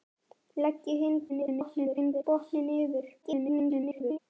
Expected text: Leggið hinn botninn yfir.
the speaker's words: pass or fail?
fail